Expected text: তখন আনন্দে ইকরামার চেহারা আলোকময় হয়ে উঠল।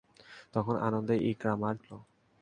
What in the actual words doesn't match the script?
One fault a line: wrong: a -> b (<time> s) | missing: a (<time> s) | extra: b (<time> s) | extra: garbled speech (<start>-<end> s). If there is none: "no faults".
missing: চেহারা আলোকময় হয়ে (1.8 s)